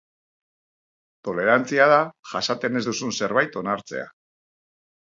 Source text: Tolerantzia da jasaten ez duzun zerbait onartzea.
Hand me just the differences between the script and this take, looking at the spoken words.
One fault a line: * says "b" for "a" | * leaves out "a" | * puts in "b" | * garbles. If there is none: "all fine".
all fine